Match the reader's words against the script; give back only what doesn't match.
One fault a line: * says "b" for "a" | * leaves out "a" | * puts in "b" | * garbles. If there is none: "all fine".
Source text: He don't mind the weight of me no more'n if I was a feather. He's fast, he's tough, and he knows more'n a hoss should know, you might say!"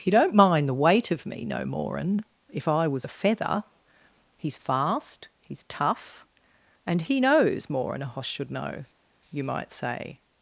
all fine